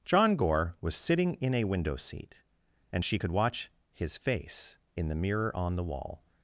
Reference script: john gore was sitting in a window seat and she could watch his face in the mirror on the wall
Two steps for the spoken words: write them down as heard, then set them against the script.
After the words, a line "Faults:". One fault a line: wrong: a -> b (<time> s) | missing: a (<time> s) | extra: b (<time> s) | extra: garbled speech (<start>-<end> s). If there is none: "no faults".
john gore was sitting in a window seat and she could watch his face in the mirror on the wall
Faults:
no faults